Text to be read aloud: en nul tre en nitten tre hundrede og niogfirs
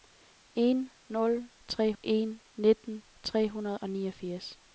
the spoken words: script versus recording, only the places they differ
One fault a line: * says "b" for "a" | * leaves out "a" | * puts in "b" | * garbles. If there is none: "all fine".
all fine